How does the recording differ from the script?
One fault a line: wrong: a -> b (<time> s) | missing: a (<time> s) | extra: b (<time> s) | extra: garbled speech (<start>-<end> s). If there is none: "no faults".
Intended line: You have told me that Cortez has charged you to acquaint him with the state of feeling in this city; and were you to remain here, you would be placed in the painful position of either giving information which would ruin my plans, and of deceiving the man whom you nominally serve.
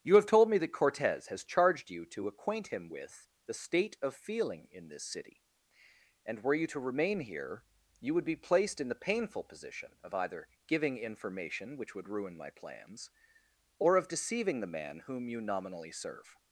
wrong: and -> or (13.8 s)